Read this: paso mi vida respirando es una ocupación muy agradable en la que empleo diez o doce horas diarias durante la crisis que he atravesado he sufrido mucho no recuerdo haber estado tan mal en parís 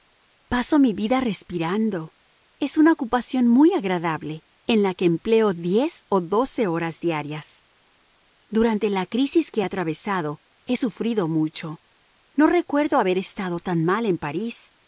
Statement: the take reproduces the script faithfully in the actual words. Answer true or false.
true